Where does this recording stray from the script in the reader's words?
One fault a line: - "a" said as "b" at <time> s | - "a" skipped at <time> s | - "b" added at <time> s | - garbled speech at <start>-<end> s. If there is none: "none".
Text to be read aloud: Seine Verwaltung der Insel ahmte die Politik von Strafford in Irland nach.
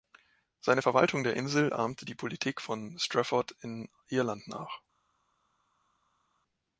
none